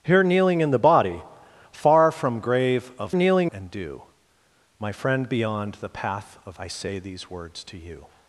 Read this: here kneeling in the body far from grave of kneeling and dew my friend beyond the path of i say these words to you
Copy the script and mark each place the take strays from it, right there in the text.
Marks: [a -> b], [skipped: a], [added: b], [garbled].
here kneeling in the body far from grave of kneeling and dew my friend beyond the path of i say these words to you